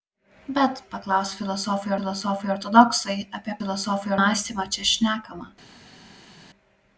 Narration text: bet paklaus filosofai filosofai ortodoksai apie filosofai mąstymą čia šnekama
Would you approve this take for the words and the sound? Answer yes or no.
yes